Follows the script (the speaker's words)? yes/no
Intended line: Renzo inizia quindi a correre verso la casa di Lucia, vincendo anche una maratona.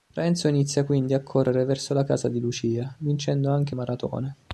no